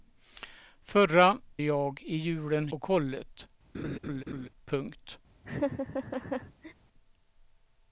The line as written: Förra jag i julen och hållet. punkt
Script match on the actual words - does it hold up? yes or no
yes